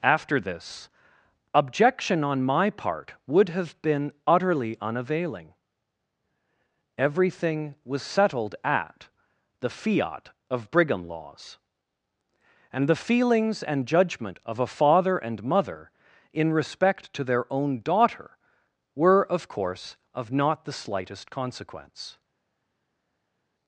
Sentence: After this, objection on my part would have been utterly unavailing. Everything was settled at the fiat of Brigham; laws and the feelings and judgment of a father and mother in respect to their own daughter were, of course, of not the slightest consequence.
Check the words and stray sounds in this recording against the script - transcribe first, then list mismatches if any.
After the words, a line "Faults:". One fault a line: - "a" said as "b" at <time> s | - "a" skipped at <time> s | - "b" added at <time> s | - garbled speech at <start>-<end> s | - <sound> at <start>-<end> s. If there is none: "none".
After this, objection on my part would have been utterly unavailing. Everything was settled at the fiat of Brigham; laws and the feelings and judgment of a father and mother in respect to their own daughter were, of course, of not the slightest consequence.
Faults:
none